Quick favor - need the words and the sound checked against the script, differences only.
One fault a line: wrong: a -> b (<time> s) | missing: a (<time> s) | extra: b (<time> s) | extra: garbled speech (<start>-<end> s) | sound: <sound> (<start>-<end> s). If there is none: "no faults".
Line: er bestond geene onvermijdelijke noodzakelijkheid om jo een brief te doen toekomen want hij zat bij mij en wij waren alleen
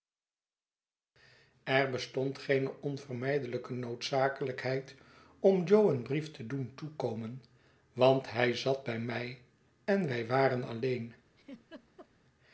sound: laugh (11.4-12.1 s)